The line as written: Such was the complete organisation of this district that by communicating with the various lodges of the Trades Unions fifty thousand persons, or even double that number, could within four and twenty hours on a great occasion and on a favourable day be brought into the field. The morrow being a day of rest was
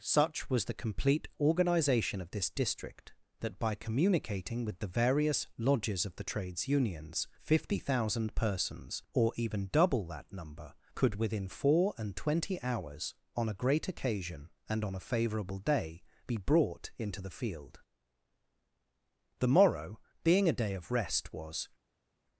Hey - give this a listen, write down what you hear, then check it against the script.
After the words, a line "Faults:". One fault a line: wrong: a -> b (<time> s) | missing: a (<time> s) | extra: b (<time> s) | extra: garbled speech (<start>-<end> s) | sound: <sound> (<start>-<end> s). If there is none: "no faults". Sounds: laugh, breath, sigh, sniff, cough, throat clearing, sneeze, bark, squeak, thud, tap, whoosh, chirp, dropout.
Such was the complete organisation of this district that by communicating with the various lodges of the Trades Unions fifty thousand persons, or even double that number, could within four and twenty hours on a great occasion and on a favourable day be brought into the field. The morrow being a day of rest was
Faults:
no faults